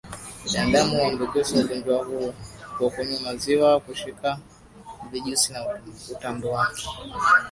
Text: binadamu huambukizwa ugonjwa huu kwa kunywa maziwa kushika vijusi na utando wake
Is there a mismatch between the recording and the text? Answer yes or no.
no